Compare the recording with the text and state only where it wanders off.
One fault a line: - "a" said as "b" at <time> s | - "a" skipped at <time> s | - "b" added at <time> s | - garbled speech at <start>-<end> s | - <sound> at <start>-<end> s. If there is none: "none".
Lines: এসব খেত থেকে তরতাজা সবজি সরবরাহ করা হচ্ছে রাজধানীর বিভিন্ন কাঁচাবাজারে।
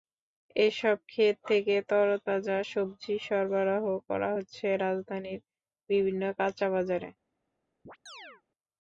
- chirp at 7.9-8.4 s